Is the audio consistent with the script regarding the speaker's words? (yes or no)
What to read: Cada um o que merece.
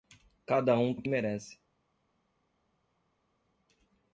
yes